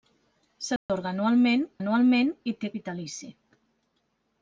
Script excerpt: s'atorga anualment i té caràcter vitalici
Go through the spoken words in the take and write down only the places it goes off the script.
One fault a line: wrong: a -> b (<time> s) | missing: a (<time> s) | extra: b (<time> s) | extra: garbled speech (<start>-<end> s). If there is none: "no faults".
extra: anualment (1.8 s)
missing: caràcter (2.7 s)